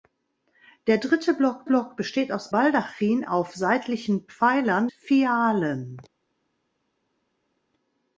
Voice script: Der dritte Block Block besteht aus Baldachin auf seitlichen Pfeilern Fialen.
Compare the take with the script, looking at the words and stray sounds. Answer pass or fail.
pass